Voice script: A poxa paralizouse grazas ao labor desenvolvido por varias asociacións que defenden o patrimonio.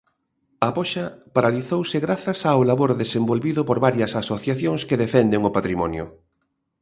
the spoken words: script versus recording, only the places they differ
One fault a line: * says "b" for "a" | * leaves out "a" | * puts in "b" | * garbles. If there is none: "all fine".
all fine